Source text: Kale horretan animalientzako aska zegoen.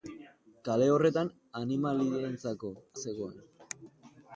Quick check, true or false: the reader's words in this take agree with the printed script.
false